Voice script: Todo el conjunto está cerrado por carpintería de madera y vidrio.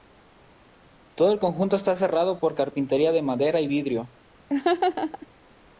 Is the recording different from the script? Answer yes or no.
no